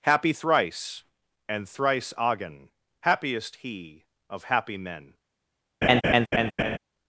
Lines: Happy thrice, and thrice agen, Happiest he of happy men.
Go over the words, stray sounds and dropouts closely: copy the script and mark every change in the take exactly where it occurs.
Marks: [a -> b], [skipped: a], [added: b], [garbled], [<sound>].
Happy thrice, and thrice agen, Happiest he of happy men. [laugh]